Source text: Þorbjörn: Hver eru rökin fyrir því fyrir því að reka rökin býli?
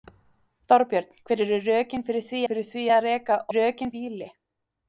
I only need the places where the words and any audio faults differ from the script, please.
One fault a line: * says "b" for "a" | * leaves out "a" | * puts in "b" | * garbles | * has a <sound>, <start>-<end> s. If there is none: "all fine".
all fine